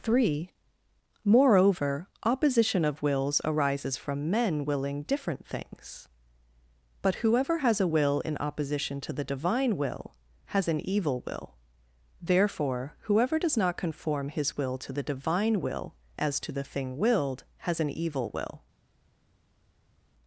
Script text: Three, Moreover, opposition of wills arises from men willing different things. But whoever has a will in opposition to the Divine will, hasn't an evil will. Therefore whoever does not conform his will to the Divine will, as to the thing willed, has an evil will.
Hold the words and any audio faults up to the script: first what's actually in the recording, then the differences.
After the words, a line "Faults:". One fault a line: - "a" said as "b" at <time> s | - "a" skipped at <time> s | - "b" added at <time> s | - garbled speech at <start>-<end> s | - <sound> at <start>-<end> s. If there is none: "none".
Three, Moreover, opposition of wills arises from men willing different things. But whoever has a will in opposition to the Divine will, has an evil will. Therefore whoever does not conform his will to the Divine will, as to the thing willed, has an evil will.
Faults:
- "hasn't" said as "has" at 10.5 s